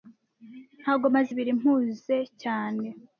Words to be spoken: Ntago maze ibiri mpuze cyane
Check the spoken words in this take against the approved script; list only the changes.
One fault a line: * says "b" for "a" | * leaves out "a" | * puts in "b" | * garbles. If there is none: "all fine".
all fine